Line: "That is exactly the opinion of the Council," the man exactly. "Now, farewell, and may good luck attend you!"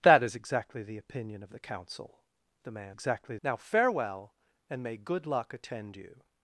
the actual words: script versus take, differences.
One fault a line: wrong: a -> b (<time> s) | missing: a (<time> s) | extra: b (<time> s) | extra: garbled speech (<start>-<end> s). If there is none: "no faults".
no faults